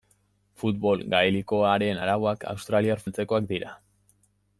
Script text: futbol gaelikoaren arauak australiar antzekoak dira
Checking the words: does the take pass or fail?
pass